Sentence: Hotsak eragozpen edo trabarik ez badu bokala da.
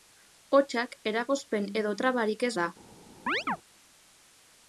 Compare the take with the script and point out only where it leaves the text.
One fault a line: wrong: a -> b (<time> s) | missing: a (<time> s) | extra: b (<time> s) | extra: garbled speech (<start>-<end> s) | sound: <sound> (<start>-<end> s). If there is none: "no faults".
missing: badu bokala (2.5 s)
sound: chirp (3.3-3.6 s)